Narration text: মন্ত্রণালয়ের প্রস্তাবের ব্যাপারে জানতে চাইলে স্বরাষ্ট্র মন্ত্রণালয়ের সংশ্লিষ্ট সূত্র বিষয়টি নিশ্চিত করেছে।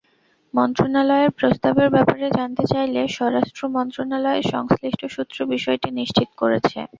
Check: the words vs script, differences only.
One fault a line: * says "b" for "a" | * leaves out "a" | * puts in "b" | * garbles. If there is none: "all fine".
all fine